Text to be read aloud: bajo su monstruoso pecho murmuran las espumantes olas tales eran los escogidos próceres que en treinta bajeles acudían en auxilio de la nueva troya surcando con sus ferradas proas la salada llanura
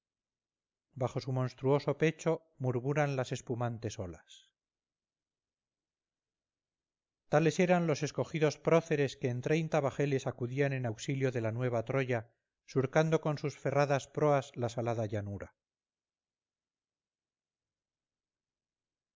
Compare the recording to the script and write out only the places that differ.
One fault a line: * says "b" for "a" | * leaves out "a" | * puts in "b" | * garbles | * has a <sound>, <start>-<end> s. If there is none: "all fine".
all fine